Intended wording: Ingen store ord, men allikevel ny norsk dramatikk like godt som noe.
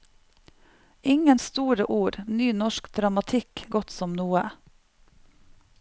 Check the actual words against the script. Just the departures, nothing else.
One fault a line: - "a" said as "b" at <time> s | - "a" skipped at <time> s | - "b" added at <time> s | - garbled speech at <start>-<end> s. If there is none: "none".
- "men allikevel" skipped at 2.2 s
- "like" skipped at 3.6 s